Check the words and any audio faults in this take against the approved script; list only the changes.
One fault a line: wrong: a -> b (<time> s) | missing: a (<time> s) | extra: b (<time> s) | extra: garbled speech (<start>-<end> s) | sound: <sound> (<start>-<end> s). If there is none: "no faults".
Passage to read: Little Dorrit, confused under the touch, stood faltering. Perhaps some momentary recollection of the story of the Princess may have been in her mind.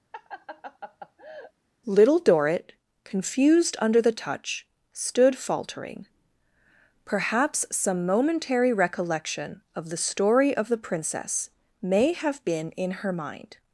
sound: laugh (0.1-1.5 s)